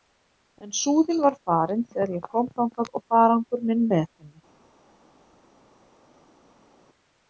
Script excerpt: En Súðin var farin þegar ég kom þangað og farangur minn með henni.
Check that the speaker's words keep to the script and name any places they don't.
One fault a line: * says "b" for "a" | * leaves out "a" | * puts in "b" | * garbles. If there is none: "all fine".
all fine